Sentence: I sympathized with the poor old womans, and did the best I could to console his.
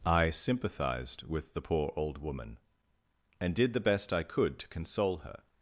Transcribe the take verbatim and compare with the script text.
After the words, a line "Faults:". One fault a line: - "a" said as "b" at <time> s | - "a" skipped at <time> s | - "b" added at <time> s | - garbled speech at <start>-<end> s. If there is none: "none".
I sympathized with the poor old woman, and did the best I could to console her.
Faults:
- "womans" said as "woman" at 2.2 s
- "his" said as "her" at 5.2 s